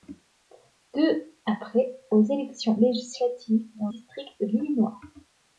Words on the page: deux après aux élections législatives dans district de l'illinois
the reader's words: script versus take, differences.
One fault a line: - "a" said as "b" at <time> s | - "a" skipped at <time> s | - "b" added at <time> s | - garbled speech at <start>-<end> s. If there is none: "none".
none